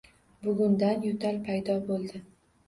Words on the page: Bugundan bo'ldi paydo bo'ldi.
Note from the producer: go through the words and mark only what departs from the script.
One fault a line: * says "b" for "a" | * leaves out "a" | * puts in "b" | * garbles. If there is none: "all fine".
* says "yo'tal" for "bo'ldi"